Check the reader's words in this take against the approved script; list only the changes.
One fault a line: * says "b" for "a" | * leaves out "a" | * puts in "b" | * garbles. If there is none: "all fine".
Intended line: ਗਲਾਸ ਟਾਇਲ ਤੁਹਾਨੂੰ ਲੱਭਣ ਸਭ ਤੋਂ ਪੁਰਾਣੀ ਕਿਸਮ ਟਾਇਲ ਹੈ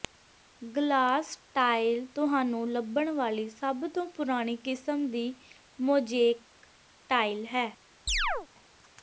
* puts in "ਵਾਲੀ"
* puts in "ਦੀ ਮੋਜ਼ੇਕ"